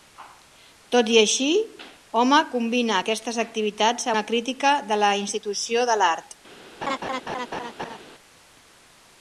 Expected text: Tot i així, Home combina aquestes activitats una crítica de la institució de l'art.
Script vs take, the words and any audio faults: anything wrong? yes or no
yes